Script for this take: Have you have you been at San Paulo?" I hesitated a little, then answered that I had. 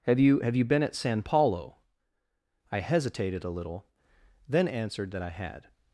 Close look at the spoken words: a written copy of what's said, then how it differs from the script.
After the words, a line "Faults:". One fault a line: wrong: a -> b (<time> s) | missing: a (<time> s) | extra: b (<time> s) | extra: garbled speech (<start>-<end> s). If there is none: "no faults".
Have you have you been at San Paulo?" I hesitated a little, then answered that I had.
Faults:
no faults